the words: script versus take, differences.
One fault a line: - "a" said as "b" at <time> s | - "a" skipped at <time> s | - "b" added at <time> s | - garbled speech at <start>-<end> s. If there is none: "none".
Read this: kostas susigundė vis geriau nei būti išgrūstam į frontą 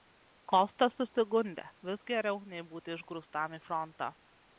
none